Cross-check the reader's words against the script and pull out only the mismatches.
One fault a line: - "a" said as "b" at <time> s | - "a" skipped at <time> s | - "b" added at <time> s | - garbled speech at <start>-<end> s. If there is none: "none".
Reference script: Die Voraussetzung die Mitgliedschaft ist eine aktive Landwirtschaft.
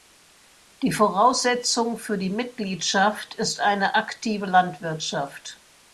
- "für" added at 2.0 s